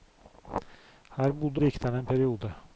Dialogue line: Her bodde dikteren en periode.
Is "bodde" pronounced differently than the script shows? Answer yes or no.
no